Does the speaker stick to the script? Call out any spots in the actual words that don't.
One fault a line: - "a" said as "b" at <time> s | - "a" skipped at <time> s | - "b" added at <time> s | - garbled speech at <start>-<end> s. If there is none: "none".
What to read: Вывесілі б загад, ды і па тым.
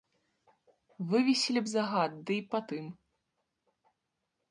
none